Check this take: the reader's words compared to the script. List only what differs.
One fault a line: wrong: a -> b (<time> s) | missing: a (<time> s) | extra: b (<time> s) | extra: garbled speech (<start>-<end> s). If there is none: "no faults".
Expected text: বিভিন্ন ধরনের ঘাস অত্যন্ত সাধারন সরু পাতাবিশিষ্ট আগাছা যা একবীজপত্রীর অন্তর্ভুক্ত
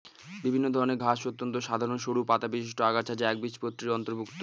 no faults